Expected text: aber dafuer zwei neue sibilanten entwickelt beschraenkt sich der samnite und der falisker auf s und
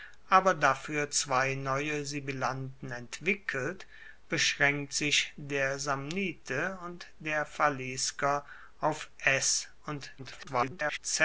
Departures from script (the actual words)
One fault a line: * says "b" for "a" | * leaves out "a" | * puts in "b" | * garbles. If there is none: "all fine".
* garbles